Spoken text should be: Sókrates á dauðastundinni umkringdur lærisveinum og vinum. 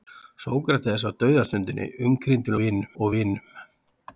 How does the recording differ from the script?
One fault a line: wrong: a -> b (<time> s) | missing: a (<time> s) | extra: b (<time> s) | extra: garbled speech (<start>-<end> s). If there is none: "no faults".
wrong: lærisveinum -> vinum (2.6 s)